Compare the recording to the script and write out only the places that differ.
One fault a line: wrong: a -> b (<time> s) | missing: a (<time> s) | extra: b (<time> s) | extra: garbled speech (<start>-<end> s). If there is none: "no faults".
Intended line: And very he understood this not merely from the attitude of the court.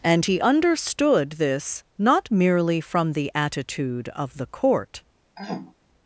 missing: very (0.2 s)